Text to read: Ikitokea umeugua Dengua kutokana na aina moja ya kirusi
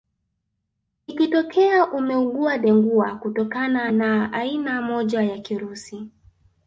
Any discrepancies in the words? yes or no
no